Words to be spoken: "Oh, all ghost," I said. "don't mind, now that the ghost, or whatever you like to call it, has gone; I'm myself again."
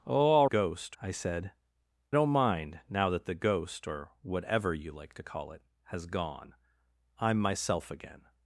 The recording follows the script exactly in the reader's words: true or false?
true